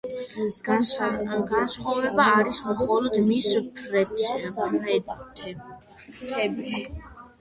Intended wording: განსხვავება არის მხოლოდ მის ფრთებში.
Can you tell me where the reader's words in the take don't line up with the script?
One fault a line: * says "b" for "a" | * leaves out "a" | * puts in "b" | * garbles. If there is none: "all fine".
all fine